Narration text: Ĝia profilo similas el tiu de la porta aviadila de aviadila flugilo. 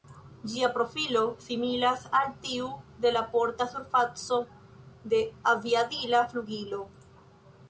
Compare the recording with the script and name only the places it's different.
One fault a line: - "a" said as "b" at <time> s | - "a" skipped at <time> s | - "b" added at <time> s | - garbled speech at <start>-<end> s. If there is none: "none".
- "el" said as "al" at 2.2 s
- "aviadila" said as "surfaco" at 3.7 s